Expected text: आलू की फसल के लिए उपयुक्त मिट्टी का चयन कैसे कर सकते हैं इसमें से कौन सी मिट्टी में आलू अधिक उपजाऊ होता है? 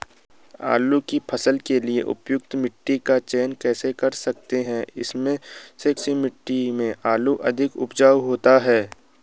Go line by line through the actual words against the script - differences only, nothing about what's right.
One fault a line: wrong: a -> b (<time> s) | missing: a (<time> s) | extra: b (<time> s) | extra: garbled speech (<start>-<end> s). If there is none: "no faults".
missing: कौन (5.9 s)